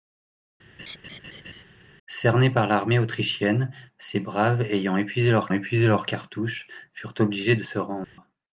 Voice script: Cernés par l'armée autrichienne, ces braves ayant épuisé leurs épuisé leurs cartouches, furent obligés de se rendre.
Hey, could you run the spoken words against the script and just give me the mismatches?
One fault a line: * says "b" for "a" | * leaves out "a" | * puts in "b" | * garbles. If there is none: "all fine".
all fine